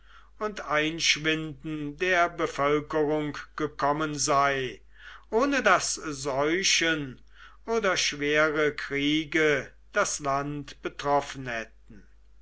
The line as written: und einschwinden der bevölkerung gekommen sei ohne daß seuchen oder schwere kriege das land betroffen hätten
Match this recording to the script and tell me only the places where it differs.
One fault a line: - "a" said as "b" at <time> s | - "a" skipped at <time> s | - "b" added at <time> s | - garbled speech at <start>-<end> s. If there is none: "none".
none